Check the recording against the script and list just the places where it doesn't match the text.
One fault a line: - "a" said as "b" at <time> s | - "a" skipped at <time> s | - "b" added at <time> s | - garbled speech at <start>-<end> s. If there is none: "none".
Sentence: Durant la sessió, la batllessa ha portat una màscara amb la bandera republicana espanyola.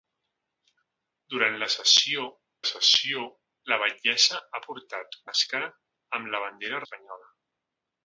- "sessió" added at 2.7 s
- "una" skipped at 5.2 s
- "republicana" skipped at 6.8 s